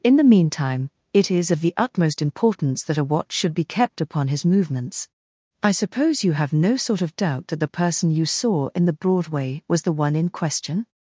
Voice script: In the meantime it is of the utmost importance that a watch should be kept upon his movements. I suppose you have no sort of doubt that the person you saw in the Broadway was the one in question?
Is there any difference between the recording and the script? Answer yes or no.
no